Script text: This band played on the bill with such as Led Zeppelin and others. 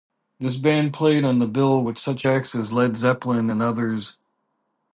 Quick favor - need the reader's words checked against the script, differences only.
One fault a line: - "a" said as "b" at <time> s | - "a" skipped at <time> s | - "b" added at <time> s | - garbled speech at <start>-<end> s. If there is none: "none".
- "acts" added at 2.2 s